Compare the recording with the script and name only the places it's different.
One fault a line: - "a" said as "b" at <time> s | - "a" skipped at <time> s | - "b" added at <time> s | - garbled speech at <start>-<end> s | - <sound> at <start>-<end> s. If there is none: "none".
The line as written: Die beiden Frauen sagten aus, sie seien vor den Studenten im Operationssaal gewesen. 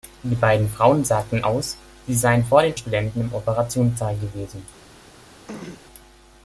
- throat clearing at 5.5-5.8 s